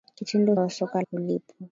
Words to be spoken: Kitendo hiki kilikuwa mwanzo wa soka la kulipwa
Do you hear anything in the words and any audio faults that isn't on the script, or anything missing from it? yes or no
yes